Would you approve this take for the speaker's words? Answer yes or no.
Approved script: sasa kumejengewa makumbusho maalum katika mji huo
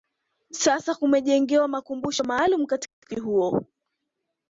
yes